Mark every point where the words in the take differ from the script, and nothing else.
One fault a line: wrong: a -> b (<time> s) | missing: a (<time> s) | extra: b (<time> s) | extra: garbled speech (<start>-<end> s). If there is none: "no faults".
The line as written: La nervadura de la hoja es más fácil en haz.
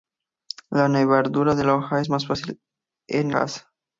no faults